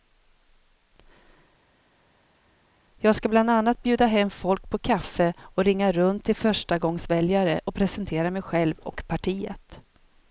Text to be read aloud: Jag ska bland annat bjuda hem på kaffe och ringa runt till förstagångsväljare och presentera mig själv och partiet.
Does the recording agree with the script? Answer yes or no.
no